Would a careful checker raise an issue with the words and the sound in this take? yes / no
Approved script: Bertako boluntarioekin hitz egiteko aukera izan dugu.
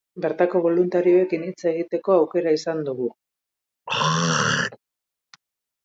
yes